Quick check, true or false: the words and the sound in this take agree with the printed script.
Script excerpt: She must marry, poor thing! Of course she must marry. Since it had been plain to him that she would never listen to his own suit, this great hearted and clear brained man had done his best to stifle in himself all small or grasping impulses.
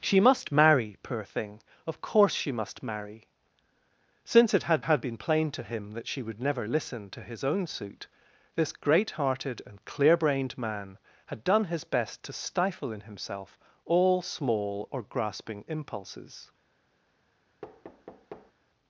false